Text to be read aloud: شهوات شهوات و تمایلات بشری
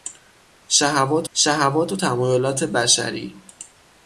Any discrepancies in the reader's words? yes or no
no